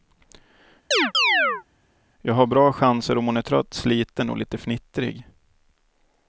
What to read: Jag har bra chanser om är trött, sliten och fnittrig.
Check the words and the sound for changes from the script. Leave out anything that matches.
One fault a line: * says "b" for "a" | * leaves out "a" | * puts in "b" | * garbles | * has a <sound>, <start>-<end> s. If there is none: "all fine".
* has a chirp, 0.9-1.6 s
* puts in "hon"
* puts in "lite"